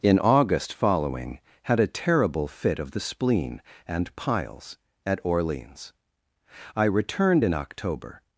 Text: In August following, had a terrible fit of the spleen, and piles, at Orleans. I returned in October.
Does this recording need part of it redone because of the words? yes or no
no